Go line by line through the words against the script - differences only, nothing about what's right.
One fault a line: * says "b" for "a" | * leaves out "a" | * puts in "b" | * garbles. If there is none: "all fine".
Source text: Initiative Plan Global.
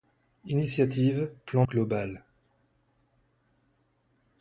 all fine